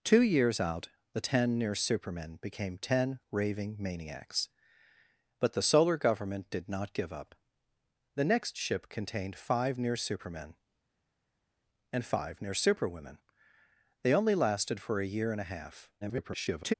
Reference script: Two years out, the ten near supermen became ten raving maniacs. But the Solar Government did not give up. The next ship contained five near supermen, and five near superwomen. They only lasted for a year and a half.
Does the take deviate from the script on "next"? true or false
false